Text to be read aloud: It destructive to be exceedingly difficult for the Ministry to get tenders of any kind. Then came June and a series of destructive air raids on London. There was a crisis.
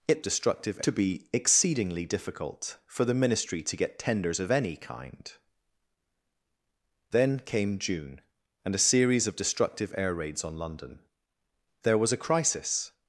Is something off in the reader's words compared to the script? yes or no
no